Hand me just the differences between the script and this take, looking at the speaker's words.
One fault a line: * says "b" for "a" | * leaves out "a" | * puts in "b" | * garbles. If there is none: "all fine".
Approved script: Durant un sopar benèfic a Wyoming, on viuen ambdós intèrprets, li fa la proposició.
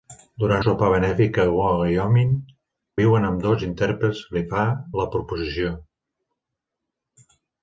* leaves out "un"
* leaves out "on"